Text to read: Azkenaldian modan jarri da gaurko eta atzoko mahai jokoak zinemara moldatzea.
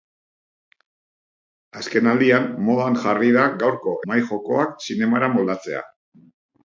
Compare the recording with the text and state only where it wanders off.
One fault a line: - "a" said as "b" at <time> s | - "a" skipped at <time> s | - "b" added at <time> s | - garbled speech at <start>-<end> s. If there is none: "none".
- "eta atzoko" skipped at 3.9 s